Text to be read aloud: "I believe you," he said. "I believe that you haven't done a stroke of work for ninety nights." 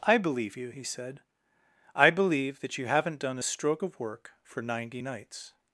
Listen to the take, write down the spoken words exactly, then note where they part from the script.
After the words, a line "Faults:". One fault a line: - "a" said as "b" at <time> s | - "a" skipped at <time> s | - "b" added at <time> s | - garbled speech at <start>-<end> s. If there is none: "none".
"I believe you," he said. "I believe that you haven't done a stroke of work for ninety nights."
Faults:
none